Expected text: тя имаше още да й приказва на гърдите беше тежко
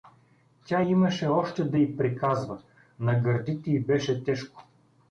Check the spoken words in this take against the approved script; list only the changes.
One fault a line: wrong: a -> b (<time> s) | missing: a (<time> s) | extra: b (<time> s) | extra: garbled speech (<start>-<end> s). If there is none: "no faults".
extra: й (3.7 s)